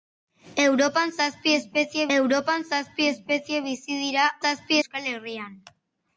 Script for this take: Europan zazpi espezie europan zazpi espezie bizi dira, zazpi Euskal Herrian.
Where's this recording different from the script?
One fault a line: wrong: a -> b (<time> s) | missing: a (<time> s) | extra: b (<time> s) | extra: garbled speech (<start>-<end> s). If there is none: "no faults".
no faults